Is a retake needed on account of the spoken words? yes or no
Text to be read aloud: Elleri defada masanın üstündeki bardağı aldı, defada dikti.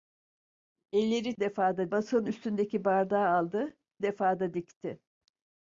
no